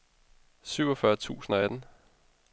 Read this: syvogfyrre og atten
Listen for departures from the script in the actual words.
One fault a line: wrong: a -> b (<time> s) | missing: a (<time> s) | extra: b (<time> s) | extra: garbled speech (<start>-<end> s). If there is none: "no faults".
extra: tusind (1.1 s)